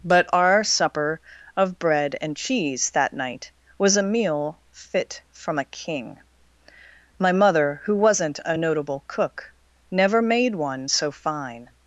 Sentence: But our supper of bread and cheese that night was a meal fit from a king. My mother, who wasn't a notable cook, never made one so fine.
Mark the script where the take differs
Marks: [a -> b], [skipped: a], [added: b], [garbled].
But our supper of bread and cheese that night was a meal fit from a king. My mother, who wasn't a notable cook, never made one so fine.